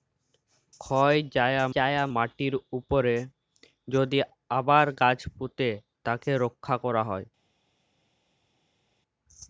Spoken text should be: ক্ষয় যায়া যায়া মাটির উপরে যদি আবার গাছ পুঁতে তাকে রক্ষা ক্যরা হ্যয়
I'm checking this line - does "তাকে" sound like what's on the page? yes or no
yes